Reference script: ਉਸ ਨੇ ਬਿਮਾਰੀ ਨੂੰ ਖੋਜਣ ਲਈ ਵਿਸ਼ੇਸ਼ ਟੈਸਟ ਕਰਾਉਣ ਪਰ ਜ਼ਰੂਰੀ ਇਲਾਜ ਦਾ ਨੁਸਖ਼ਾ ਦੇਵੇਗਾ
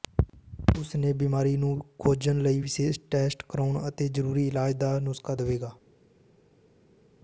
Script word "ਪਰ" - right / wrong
wrong